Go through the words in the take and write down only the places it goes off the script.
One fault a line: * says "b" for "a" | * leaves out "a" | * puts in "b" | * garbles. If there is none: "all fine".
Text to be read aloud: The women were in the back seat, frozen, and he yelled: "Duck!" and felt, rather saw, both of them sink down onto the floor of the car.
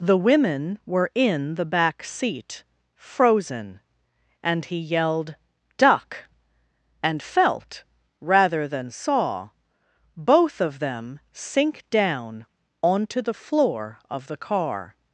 * puts in "than"